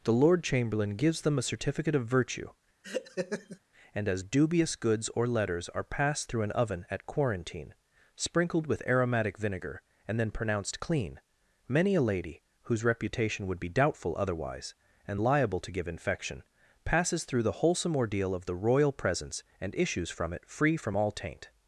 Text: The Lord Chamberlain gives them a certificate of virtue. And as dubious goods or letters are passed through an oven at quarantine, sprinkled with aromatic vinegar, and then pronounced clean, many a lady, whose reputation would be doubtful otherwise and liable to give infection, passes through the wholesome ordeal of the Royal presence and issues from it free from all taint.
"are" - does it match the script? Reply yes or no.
yes